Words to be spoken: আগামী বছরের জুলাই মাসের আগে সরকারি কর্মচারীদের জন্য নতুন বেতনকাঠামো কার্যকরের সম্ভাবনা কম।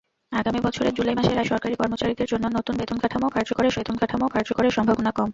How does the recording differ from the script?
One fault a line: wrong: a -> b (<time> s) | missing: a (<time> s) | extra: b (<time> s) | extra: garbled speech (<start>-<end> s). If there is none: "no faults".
missing: আগে (1.4 s)
extra: বেতনকাঠামো কার্যকরের (3.7 s)